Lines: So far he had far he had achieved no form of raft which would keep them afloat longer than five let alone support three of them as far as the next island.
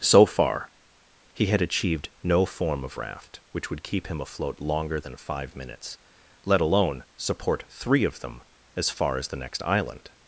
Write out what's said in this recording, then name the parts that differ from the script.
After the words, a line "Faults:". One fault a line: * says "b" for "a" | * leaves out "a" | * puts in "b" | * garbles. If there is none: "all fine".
So far he had achieved no form of raft which would keep him afloat longer than five minutes, let alone support three of them as far as the next island.
Faults:
* leaves out "far he had"
* says "him" for "them"
* puts in "minutes"